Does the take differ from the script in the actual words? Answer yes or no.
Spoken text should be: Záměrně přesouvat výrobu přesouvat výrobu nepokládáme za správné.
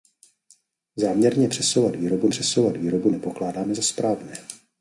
no